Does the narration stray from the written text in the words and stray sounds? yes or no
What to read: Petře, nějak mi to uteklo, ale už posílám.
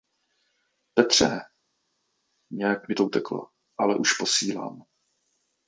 no